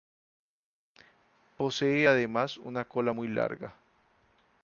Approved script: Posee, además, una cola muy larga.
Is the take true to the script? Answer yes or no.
yes